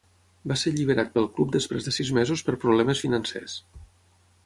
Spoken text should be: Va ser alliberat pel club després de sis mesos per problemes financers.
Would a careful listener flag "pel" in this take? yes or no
no